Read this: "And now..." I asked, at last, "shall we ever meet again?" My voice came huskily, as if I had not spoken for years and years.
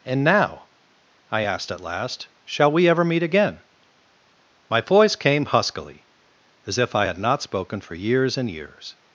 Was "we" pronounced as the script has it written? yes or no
yes